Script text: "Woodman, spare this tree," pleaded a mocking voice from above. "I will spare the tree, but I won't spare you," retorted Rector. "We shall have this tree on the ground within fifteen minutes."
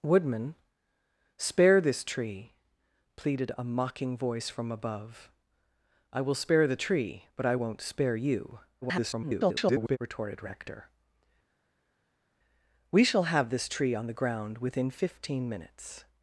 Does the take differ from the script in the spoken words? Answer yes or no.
yes